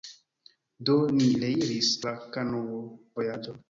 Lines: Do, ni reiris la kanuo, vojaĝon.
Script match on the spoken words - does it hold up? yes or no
yes